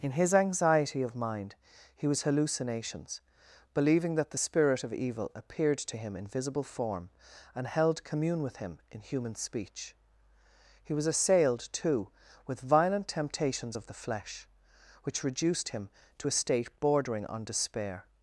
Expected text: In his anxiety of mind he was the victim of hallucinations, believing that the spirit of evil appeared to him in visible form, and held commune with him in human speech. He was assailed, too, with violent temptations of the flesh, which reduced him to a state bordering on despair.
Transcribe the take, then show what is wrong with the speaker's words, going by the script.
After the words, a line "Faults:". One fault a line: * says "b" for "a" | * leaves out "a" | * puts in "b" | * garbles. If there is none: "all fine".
In his anxiety of mind he was hallucinations, believing that the spirit of evil appeared to him in visible form, and held commune with him in human speech. He was assailed, too, with violent temptations of the flesh, which reduced him to a state bordering on despair.
Faults:
* leaves out "the victim of"